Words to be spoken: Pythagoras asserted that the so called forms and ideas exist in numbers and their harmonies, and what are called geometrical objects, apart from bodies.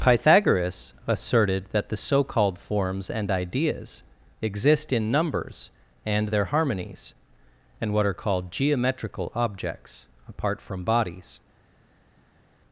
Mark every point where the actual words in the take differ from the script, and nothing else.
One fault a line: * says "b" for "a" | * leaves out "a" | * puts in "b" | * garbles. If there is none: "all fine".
all fine